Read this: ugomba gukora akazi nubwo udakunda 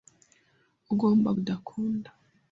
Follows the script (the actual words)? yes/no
no